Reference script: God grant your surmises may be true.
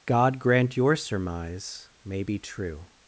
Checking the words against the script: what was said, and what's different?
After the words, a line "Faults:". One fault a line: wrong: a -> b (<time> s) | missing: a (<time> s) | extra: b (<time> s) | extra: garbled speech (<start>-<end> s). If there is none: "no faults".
God grant your surmise may be true.
Faults:
wrong: surmises -> surmise (0.9 s)